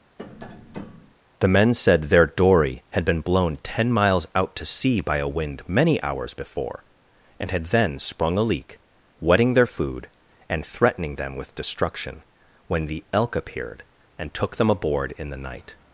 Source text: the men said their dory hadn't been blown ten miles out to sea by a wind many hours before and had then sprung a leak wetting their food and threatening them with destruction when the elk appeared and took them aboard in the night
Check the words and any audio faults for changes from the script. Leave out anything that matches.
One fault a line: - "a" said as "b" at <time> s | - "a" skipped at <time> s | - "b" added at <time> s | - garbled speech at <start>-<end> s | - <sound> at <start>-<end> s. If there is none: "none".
- tap at 0.2-1.1 s
- "hadn't" said as "had" at 2.9 s